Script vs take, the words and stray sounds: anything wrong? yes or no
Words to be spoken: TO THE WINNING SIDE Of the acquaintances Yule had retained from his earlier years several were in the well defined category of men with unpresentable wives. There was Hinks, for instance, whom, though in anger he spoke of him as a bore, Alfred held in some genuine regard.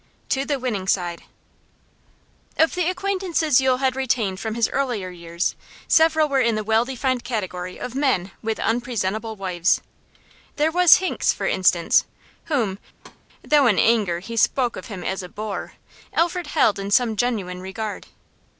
yes